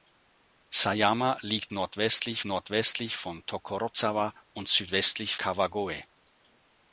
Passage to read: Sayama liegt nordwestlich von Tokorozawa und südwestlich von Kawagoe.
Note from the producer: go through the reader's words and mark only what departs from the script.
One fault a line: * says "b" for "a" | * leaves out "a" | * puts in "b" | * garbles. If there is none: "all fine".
* puts in "nordwestlich"
* leaves out "von"